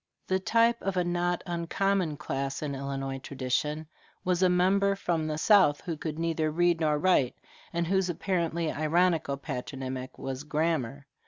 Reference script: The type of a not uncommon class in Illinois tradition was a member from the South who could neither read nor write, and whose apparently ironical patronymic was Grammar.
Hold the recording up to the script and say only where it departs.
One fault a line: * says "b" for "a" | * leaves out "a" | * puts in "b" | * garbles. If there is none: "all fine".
all fine